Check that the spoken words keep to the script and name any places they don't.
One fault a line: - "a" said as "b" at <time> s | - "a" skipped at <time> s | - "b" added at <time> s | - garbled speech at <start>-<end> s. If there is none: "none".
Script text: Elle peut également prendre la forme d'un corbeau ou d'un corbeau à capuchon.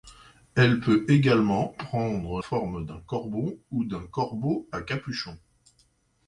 - "la" skipped at 2.4 s